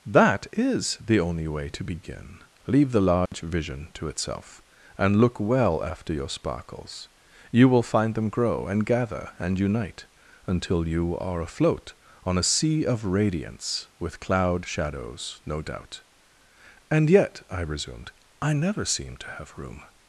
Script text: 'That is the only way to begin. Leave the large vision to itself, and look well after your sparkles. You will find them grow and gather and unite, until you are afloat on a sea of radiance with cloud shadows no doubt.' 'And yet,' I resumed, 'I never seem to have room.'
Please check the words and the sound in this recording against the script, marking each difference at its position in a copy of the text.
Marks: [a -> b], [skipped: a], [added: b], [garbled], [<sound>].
'That is the only way to begin. Leave the large [dropout] vision to itself, and look well after your sparkles. You will find them grow and gather and unite, until you are afloat on a sea of radiance with cloud shadows no doubt.' 'And yet,' I resumed, 'I never seem to have room.'